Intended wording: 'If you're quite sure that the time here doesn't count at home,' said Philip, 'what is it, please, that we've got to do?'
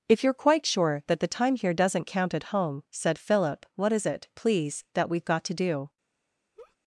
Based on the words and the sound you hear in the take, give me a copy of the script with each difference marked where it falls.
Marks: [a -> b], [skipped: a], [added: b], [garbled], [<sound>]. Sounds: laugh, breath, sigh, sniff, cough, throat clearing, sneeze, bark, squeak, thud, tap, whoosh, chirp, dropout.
'If you're quite sure that the time here doesn't count at home,' said Philip, 'what is it, please, that we've got to do?' [laugh]